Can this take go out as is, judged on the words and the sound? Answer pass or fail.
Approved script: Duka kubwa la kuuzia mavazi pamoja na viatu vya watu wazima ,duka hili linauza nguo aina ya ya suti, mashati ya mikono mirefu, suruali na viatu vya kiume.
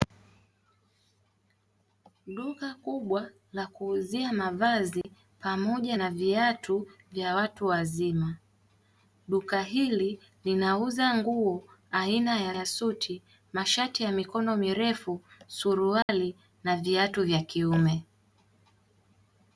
fail